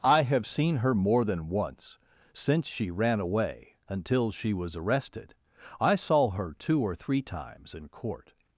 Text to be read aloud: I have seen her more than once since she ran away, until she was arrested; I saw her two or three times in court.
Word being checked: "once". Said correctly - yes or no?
yes